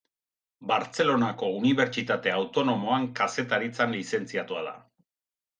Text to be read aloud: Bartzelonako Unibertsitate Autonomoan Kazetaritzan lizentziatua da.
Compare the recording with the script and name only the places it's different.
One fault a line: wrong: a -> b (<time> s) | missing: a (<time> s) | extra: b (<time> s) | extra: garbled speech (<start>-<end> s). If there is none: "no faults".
no faults